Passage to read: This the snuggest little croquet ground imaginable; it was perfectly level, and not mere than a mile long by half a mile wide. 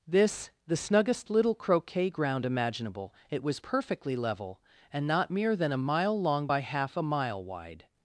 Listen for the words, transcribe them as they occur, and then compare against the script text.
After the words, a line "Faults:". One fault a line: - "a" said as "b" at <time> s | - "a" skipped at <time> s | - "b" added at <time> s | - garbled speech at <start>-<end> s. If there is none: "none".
This the snuggest little croquet ground imaginable; it was perfectly level, and not mere than a mile long by half a mile wide.
Faults:
none